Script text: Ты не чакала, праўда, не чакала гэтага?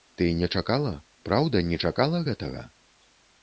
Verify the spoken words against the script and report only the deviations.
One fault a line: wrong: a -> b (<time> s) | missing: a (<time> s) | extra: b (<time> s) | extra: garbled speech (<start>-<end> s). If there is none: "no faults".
no faults